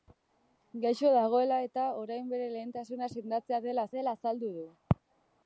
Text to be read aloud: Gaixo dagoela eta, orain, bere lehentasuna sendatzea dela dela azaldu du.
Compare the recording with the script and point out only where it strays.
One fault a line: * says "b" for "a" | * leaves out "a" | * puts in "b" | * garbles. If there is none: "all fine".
all fine